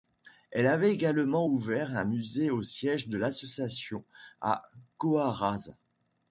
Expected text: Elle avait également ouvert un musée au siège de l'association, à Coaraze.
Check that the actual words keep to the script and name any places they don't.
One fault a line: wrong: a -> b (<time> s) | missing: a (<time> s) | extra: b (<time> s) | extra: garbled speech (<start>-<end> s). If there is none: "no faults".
no faults